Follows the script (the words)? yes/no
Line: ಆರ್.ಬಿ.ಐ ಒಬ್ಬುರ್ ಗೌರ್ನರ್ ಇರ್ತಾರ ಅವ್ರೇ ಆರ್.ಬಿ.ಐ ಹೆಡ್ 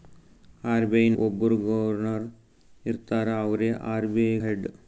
yes